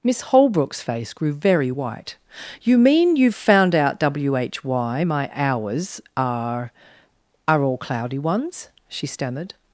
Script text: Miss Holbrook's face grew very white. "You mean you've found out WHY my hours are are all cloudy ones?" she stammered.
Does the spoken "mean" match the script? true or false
true